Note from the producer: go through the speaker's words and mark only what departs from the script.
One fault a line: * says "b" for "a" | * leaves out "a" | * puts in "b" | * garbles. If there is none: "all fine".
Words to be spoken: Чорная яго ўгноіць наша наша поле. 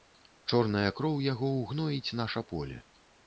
* puts in "кроў"
* leaves out "наша"